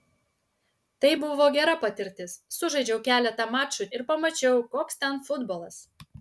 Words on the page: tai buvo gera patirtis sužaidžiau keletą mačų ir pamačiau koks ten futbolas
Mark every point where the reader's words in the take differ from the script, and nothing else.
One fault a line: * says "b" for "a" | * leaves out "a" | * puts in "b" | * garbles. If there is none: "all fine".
all fine